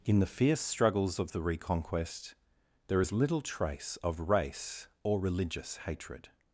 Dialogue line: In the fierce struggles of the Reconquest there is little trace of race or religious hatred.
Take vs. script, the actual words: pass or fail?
pass